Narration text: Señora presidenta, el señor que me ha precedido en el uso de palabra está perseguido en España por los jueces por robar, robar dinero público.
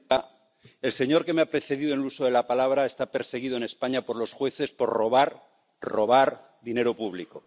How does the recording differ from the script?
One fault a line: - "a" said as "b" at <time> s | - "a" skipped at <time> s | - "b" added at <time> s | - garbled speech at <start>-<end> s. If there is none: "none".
- "la" added at 2.3 s